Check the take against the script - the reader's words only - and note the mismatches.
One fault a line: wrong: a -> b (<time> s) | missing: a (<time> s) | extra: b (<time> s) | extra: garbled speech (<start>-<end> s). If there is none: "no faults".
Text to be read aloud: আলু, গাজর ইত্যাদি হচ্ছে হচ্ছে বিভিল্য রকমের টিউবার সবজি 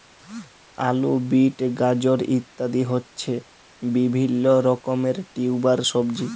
extra: বিট (1.3 s)
missing: হচ্ছে (3.3 s)